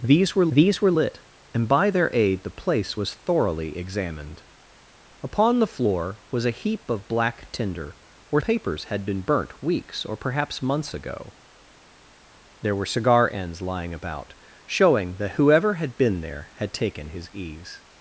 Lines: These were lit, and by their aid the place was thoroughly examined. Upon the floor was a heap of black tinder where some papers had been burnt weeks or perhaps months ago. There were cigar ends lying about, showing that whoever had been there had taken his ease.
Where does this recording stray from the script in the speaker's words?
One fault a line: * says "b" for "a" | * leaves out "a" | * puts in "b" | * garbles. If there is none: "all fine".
* puts in "these were"
* leaves out "some"